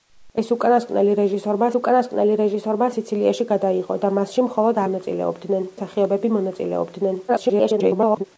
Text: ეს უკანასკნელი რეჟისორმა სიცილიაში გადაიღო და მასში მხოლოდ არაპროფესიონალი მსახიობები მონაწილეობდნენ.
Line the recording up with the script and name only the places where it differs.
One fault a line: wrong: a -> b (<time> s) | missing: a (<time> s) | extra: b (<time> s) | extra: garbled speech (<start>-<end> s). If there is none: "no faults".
extra: უკანასკნელი რეჟისორმა (1.8 s)
wrong: არაპროფესიონალი -> მონაწილეობდნენ (4.9 s)
extra: garbled speech (7.3-8.2 s)